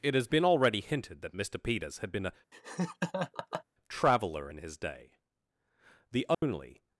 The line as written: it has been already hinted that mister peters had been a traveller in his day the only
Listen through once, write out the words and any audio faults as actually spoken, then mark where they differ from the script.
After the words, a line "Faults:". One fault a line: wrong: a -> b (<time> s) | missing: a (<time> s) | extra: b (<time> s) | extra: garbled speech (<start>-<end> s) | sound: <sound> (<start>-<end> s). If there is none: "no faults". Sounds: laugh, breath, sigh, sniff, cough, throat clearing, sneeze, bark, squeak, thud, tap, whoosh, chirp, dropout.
it has been already hinted that mister peters had been a traveller in his day the only
Faults:
sound: laugh (2.5-3.6 s)
sound: dropout (6.3-6.4 s)